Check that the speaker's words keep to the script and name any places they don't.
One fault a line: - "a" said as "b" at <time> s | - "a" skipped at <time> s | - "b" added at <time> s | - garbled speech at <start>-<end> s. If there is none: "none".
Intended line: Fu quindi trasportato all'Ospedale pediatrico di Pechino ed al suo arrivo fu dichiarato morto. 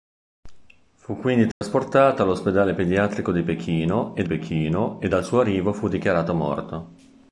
- "Pechino ed" added at 4.3 s